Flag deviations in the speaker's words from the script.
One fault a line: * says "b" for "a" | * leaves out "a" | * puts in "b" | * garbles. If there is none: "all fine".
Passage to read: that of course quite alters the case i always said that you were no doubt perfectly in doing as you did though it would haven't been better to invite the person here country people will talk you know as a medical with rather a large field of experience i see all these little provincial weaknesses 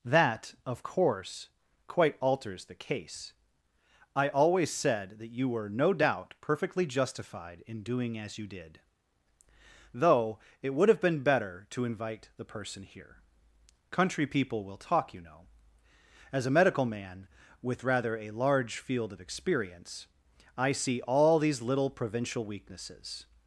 * puts in "justified"
* says "have" for "haven't"
* puts in "man"